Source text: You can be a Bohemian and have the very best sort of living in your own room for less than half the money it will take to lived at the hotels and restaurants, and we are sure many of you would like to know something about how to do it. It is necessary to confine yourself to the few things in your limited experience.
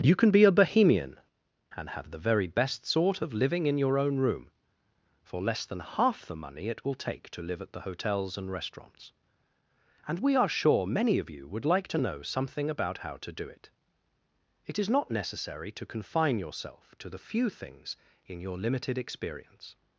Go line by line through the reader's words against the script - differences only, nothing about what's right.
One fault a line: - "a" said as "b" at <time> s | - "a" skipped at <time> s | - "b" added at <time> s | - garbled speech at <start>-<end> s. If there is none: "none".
- "lived" said as "live" at 7.4 s
- "not" added at 14.9 s